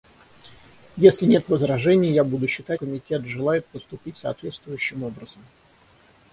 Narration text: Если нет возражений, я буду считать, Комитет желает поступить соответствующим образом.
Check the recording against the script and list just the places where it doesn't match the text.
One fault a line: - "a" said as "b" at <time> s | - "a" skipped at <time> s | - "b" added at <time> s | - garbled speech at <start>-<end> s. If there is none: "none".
none